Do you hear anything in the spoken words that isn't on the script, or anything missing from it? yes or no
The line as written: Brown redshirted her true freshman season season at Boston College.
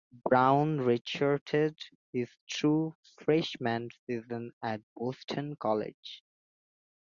yes